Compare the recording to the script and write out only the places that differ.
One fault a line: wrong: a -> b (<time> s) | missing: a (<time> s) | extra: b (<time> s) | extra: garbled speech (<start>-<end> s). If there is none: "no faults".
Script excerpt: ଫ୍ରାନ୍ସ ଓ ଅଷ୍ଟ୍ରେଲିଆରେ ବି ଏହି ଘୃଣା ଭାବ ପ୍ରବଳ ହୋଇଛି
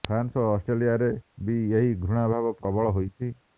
no faults